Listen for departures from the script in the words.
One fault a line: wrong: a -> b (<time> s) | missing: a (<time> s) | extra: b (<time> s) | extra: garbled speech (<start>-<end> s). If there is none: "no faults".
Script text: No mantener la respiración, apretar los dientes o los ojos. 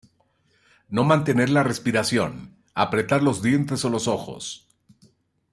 no faults